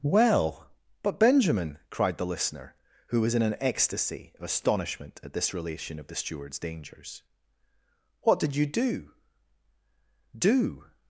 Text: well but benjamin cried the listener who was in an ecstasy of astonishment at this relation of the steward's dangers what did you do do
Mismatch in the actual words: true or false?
false